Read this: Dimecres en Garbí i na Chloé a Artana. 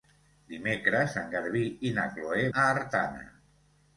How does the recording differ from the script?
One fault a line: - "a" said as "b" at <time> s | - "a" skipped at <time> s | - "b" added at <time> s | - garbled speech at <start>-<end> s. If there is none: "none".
none